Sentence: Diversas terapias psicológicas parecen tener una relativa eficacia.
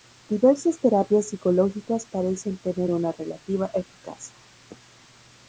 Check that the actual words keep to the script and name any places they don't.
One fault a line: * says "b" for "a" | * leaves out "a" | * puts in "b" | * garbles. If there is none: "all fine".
all fine